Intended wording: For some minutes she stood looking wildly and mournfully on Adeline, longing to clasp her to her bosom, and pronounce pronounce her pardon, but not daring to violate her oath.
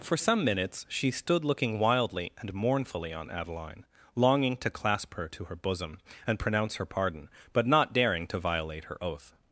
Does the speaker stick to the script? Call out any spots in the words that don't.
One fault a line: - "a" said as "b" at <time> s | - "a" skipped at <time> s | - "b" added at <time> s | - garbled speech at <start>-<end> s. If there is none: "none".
- "pronounce" skipped at 6.8 s